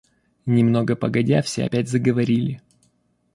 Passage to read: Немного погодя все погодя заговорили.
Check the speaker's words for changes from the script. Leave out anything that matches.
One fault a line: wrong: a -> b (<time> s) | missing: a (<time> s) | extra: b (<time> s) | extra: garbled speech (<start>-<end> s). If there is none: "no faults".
wrong: погодя -> опять (1.6 s)